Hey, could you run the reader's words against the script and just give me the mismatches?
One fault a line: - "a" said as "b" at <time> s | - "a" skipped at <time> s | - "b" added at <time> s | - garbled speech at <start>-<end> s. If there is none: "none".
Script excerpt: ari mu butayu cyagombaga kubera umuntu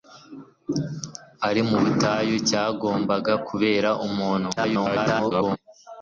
- garbled speech at 4.6-5.6 s